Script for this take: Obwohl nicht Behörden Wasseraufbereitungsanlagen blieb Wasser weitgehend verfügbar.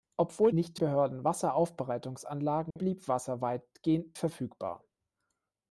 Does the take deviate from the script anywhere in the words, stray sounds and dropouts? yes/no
yes